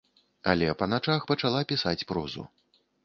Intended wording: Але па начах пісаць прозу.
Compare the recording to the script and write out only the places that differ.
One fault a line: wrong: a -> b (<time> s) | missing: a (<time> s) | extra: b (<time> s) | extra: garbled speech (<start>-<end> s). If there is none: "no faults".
extra: пачала (1.3 s)